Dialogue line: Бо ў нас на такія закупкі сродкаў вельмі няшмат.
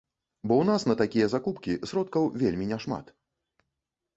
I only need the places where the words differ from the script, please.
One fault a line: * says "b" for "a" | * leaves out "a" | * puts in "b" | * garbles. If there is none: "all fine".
all fine